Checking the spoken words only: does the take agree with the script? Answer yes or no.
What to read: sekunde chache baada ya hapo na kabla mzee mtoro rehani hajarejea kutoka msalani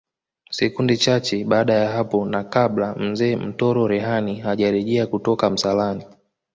yes